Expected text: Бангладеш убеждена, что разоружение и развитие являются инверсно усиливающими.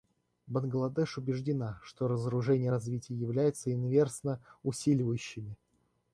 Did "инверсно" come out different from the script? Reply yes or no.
no